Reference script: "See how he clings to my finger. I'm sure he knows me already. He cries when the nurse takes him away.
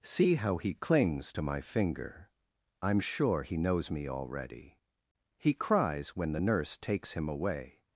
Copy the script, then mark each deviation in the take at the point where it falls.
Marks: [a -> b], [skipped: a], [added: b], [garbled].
"See how he clings to my finger. I'm sure he knows me already. He cries when the nurse takes him away.